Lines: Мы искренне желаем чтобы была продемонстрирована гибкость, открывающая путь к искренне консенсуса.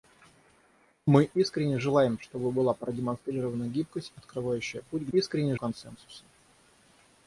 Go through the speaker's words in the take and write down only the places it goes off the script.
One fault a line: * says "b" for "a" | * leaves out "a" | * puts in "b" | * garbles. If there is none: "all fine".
all fine